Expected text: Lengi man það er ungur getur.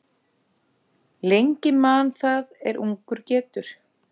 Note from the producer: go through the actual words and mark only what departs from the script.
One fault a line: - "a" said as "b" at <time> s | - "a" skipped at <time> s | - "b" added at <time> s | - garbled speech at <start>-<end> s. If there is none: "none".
none